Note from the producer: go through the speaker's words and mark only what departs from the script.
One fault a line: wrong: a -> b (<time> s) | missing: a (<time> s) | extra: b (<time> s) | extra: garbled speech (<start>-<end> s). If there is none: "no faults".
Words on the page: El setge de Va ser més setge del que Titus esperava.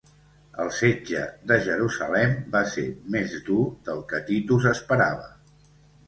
extra: Jerusalem (1.6 s)
wrong: setge -> dur (3.5 s)